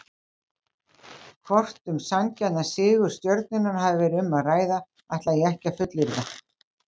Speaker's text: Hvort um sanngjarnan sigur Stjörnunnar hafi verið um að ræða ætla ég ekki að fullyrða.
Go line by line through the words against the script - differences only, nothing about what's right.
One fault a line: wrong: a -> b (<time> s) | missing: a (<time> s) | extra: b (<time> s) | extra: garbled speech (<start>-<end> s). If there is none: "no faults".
no faults